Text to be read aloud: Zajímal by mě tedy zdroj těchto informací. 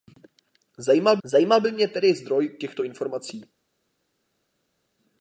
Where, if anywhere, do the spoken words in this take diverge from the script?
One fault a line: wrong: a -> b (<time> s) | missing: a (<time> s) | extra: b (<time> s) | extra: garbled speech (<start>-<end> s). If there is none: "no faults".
extra: zajímal (1.2 s)